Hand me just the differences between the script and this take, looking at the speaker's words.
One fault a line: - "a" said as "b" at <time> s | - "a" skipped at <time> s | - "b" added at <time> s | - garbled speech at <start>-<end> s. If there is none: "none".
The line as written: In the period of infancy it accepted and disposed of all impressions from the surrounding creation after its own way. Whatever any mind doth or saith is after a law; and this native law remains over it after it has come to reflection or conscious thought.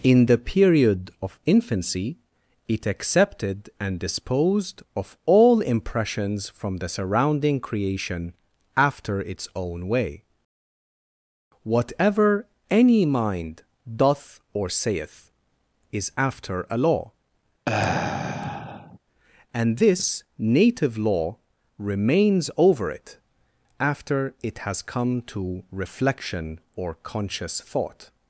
none